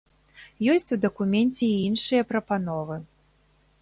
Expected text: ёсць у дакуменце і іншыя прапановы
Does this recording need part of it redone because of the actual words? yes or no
no